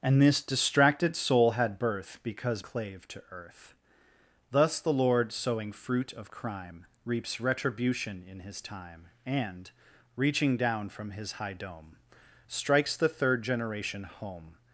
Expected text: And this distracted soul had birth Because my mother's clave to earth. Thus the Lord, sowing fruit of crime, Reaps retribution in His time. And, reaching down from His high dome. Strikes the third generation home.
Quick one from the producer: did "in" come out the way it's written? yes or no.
yes